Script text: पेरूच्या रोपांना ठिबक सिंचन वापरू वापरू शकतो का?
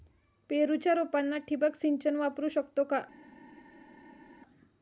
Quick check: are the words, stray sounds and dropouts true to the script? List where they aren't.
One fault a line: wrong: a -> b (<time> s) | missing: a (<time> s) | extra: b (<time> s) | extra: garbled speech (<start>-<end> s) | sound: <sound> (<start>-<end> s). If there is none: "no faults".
missing: वापरू (2.5 s)